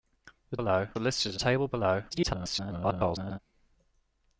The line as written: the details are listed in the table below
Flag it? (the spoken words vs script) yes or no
yes